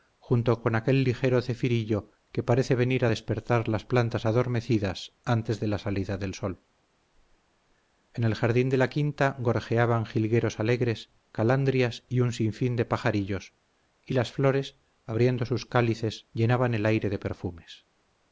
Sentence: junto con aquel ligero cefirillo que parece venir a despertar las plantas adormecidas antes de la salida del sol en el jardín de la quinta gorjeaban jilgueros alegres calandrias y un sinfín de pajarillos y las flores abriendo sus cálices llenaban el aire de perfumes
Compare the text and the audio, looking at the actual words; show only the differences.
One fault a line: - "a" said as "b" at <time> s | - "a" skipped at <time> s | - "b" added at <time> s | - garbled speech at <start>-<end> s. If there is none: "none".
none